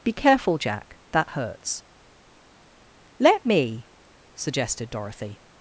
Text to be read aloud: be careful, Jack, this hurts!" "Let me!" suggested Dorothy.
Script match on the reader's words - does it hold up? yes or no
no